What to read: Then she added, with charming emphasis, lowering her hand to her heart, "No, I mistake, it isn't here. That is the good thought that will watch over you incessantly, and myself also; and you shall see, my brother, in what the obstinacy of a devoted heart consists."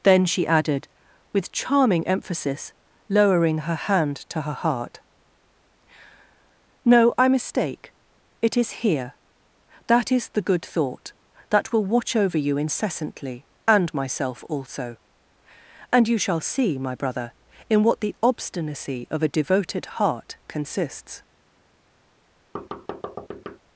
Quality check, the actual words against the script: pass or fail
fail